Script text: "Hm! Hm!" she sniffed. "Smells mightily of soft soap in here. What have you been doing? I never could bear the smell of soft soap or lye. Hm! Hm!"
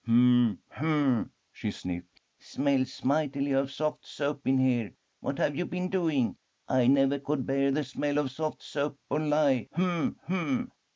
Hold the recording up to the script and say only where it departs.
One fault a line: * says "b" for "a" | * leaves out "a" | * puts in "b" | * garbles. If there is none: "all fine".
all fine